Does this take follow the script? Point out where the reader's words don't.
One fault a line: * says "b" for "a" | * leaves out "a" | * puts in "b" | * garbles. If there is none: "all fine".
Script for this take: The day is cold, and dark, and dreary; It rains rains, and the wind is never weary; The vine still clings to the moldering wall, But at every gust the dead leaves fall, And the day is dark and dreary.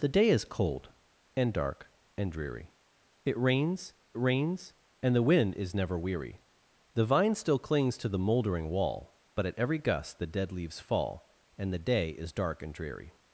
all fine